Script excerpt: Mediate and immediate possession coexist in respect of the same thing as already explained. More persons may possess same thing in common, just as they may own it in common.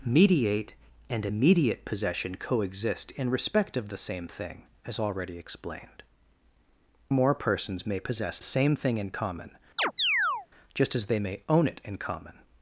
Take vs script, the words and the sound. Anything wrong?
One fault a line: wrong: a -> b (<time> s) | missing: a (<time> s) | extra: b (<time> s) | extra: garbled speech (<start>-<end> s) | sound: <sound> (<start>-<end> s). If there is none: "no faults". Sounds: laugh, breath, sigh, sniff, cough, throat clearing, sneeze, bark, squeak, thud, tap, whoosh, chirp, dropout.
sound: chirp (9.8-10.5 s)